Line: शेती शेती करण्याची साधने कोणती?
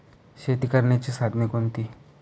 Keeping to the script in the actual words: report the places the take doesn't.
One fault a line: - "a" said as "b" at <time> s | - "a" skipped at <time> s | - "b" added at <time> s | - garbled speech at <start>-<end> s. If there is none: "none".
- "शेती" skipped at 0.7 s